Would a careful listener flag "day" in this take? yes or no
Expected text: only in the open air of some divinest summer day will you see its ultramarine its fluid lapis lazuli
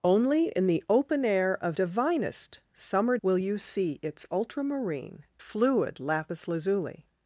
yes